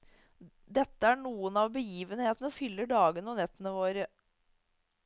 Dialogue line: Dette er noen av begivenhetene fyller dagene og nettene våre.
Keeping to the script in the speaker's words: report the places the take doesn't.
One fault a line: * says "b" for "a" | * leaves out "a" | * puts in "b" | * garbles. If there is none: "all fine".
all fine